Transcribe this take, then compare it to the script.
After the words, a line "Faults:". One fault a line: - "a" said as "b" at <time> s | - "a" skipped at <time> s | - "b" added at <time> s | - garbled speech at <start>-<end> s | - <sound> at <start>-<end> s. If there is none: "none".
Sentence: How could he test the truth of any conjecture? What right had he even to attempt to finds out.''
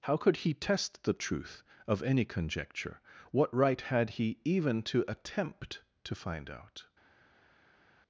How could he test the truth of any conjecture? What right had he even to attempt to find out.''
Faults:
- "finds" said as "find" at 6.2 s